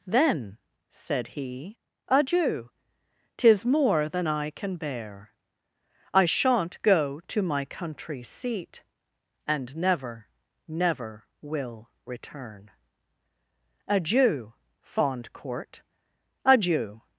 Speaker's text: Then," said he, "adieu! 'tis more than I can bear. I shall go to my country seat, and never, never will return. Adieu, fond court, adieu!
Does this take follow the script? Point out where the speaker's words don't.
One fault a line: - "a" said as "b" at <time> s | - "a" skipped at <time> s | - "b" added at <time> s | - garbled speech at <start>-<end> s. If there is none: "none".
- "shall" said as "shan't" at 6.2 s